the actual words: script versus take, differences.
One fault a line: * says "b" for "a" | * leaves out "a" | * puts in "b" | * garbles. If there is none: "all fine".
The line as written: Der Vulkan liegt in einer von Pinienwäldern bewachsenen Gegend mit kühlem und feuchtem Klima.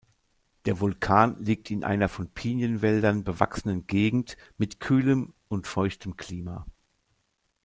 all fine